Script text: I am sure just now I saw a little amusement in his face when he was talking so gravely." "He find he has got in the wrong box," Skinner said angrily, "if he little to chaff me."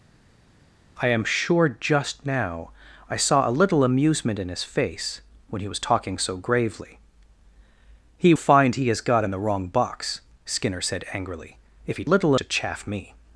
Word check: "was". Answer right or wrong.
right